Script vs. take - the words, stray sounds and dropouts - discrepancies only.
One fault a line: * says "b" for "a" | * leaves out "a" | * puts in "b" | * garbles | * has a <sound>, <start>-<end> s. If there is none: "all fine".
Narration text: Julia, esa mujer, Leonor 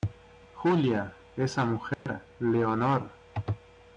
* has a dropout, 1.9-2.1 s